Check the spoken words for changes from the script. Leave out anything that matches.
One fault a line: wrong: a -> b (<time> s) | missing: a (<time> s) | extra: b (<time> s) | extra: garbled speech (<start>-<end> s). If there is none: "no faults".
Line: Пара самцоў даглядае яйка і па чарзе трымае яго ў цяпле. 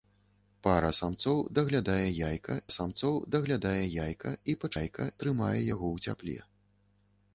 extra: самцоў даглядае яйка (2.8 s)
wrong: чарзе -> яйка (4.8 s)